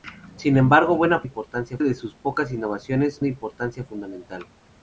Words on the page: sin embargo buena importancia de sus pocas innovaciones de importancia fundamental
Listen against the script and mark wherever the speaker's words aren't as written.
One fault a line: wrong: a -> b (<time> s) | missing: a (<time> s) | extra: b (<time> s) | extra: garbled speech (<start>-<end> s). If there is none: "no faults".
no faults